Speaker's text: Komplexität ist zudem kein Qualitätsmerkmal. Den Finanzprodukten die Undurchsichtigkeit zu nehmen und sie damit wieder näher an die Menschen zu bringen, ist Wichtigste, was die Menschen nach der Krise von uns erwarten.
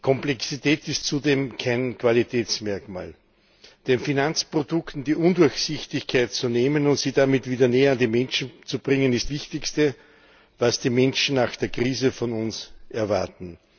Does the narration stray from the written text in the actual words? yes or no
no